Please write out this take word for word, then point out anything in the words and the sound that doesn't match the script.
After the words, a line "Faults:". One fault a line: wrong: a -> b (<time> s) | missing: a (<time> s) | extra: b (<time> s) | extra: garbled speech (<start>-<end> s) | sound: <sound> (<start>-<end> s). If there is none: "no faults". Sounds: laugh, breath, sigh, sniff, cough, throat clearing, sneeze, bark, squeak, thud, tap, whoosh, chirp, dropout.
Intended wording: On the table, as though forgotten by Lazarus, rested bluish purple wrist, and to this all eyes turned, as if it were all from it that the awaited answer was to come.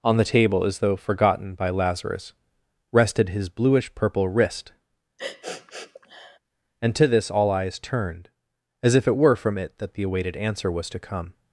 On the table, as though forgotten by Lazarus, rested his bluish purple wrist, and to this all eyes turned, as if it were from it that the awaited answer was to come.
Faults:
extra: his (3.3 s)
sound: sniff (5.2-6.4 s)
missing: all (9.4 s)